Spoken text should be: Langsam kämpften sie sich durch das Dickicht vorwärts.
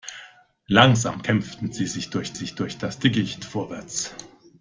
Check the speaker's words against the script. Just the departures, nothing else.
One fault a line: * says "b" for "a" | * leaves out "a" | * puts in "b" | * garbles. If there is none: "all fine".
* puts in "sich durch"